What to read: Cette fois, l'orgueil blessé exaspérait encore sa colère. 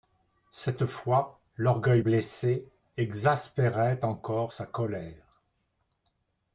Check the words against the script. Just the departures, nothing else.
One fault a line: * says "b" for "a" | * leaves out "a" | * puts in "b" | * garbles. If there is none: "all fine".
all fine